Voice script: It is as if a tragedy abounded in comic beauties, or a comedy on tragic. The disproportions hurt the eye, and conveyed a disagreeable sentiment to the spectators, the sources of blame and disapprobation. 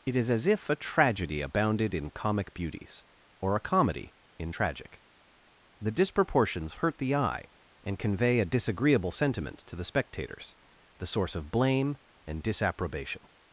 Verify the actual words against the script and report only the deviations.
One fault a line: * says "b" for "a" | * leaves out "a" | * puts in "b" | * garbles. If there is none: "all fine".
* says "in" for "on"
* says "convey" for "conveyed"
* says "source" for "sources"